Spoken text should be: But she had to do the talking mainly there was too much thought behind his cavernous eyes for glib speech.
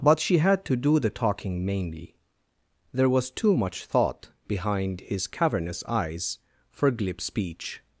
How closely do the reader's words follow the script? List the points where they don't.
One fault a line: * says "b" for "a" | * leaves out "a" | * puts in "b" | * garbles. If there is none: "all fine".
all fine